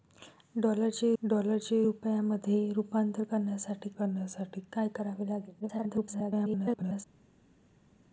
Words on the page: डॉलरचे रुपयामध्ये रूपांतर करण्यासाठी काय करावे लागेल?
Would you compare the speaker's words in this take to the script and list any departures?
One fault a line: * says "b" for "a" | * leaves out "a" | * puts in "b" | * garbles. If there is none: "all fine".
* puts in "डॉलरचे"
* puts in "करण्यासाठी"
* garbles